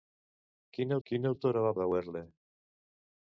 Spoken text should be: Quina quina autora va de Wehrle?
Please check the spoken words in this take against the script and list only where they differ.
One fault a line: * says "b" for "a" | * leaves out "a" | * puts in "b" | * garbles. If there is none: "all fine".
all fine